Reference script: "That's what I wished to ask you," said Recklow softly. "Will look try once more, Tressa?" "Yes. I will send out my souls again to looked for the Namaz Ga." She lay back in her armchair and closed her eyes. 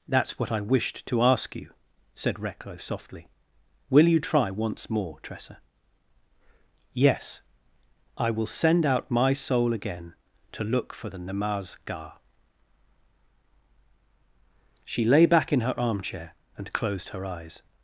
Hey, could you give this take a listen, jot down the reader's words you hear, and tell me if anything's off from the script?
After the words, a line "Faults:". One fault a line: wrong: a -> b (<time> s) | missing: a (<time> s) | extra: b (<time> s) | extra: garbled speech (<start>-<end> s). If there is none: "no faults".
"That's what I wished to ask you," said Recklow softly. "Will you try once more, Tressa?" "Yes. I will send out my soul again to look for the Namaz Ga." She lay back in her armchair and closed her eyes.
Faults:
wrong: look -> you (4.1 s)
wrong: souls -> soul (9.3 s)
wrong: looked -> look (10.6 s)